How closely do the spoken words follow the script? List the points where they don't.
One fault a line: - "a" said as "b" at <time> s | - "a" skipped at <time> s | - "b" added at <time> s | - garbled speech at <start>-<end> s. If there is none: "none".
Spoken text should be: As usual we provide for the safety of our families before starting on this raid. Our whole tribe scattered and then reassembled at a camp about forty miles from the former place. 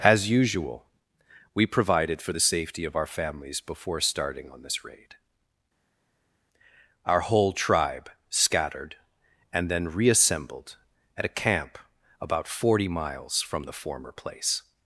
- "provide" said as "provided" at 1.7 s